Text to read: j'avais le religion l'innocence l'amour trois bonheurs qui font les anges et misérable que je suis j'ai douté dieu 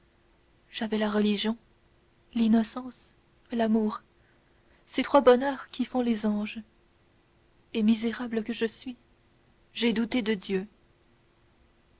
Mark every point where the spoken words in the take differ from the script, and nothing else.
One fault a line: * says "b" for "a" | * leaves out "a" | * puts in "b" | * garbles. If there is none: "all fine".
* says "la" for "le"
* puts in "ces"
* puts in "de"